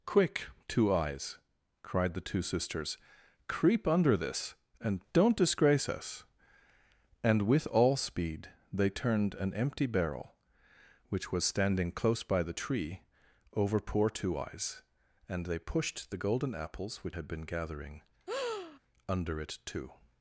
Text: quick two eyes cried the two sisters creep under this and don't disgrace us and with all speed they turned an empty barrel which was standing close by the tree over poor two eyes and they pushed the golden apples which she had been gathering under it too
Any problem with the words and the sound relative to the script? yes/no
yes